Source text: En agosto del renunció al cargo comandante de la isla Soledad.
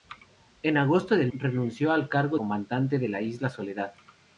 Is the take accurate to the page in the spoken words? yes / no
yes